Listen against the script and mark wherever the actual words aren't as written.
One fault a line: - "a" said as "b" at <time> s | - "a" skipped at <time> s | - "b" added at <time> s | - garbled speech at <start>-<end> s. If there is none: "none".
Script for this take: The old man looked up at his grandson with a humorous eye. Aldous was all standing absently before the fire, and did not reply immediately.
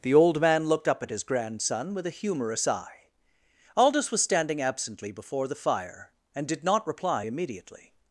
- "all" skipped at 4.2 s